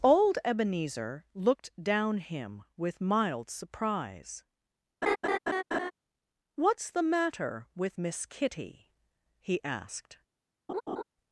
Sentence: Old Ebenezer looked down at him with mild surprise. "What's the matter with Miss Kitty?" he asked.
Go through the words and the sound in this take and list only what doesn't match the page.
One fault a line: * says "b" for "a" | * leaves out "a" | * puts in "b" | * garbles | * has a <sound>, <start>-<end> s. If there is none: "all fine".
* leaves out "at"
* has a laugh, 5.0-5.9 s
* has a laugh, 10.7-11.0 s